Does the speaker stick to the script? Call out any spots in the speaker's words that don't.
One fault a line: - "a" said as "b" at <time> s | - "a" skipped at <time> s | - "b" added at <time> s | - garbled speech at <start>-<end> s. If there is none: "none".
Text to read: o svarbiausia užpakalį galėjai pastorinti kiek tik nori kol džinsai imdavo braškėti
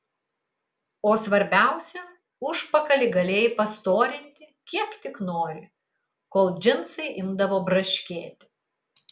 none